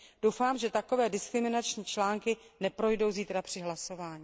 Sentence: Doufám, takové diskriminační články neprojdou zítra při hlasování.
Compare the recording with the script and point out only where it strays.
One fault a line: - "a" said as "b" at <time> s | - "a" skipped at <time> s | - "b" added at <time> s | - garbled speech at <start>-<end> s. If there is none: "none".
- "že" added at 0.6 s